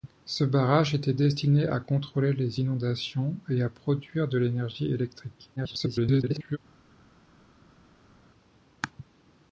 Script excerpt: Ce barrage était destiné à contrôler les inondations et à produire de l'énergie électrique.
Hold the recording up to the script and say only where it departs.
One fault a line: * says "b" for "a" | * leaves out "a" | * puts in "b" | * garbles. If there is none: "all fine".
* garbles